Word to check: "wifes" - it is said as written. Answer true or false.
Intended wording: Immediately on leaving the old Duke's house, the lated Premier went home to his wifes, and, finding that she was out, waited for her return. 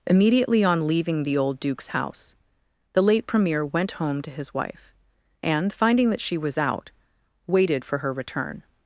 false